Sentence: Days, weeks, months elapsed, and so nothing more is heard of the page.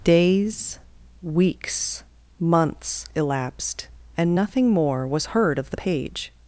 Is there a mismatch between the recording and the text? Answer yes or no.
yes